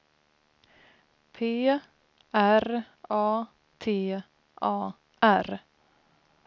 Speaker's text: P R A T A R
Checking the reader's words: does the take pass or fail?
pass